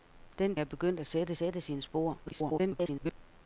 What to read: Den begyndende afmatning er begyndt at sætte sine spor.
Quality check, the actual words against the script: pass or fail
fail